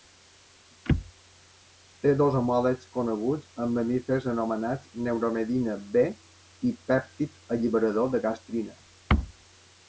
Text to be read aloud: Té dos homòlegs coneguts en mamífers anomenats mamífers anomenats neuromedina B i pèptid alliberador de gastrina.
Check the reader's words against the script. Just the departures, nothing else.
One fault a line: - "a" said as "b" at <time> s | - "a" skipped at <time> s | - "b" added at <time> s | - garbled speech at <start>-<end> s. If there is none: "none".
- "mamífers anomenats" skipped at 4.9 s